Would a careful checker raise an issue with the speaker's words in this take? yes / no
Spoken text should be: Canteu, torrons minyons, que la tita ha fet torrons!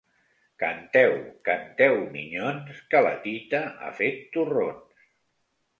yes